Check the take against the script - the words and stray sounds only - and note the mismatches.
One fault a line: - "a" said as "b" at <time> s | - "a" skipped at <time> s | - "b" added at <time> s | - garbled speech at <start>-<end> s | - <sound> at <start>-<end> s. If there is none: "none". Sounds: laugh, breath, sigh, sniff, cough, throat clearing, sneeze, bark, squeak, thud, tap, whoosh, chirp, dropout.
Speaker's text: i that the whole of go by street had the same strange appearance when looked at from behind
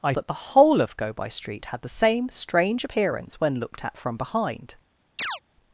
- chirp at 5.2-5.4 s